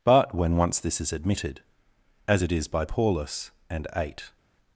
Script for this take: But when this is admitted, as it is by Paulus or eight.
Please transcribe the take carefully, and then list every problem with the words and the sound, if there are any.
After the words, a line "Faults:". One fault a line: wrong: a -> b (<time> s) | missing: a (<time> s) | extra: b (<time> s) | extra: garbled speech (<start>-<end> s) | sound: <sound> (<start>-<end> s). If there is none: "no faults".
But when once this is admitted, as it is by Paulus and eight.
Faults:
extra: once (0.6 s)
wrong: or -> and (3.7 s)